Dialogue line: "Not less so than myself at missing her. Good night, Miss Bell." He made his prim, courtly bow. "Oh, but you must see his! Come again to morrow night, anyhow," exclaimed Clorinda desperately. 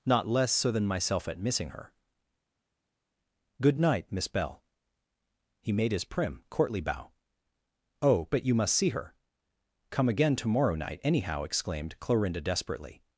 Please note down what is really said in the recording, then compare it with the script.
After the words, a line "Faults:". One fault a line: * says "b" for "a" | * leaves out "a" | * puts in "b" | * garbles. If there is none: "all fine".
"Not less so than myself at missing her. Good night, Miss Bell." He made his prim, courtly bow. "Oh, but you must see her! Come again to morrow night, anyhow," exclaimed Clorinda desperately.
Faults:
* says "her" for "his"